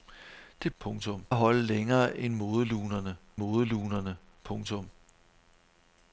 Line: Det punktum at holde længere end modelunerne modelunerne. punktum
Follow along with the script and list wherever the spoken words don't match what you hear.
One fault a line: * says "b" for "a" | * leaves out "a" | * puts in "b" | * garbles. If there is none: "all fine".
all fine